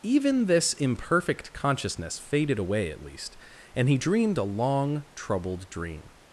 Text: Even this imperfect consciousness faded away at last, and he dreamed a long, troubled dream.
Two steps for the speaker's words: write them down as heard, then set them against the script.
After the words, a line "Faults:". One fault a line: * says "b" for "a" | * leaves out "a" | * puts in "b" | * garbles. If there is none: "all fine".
Even this imperfect consciousness faded away at least, and he dreamed a long, troubled dream.
Faults:
* says "least" for "last"